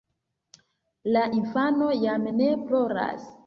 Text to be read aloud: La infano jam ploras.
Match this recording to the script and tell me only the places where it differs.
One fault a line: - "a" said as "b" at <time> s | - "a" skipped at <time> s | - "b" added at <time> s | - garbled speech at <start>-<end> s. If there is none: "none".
- "ne" added at 2.3 s